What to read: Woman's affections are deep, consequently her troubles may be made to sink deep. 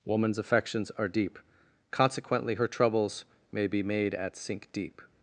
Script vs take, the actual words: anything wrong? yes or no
yes